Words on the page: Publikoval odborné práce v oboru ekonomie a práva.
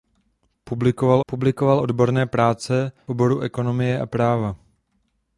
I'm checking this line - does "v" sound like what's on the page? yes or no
no